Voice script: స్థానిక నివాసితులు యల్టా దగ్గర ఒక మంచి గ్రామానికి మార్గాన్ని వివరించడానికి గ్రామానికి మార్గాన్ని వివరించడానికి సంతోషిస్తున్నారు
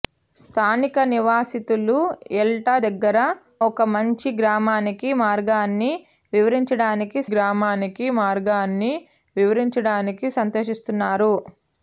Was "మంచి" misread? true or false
false